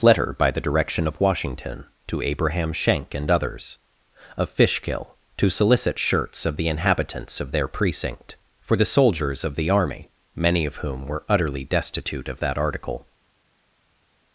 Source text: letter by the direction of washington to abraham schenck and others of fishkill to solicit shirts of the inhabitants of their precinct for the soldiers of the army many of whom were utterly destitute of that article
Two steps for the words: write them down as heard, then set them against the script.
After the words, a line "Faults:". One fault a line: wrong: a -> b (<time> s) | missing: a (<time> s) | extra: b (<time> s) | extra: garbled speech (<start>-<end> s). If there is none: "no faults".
letter by the direction of washington to abraham schenck and others of fishkill to solicit shirts of the inhabitants of their precinct for the soldiers of the army many of whom were utterly destitute of that article
Faults:
no faults